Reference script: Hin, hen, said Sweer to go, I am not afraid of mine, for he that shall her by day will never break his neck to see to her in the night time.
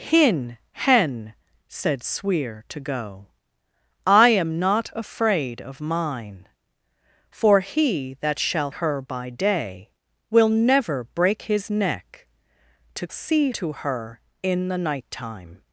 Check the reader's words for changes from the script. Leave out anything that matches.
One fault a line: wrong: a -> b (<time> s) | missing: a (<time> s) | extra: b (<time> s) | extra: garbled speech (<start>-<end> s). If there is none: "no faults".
no faults